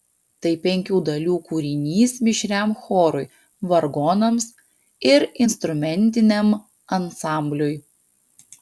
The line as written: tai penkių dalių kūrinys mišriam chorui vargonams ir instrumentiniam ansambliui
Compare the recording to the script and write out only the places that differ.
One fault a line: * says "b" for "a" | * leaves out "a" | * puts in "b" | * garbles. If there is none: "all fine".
all fine